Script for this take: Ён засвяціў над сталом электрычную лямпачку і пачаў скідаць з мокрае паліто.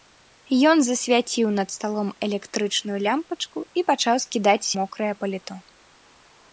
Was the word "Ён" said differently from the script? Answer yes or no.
no